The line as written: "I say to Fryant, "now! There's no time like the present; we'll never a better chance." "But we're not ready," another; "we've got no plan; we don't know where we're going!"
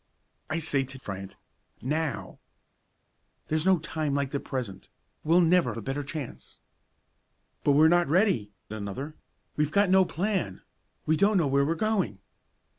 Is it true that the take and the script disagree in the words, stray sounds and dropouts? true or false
false